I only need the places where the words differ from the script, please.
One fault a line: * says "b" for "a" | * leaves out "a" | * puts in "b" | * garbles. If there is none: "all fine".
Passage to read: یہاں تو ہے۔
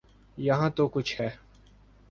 * puts in "کچھ"